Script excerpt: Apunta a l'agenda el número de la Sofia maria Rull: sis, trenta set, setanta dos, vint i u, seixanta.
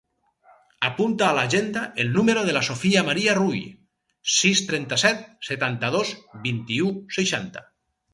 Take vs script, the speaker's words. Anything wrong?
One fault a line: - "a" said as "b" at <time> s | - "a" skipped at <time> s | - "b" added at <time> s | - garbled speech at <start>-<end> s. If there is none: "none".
none